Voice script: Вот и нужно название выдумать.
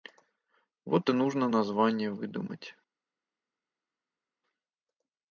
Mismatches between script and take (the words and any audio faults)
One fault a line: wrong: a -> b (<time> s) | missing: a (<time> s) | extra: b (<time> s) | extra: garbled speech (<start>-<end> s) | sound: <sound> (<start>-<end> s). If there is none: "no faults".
no faults